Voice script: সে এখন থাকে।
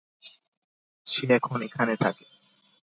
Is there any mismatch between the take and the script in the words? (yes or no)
yes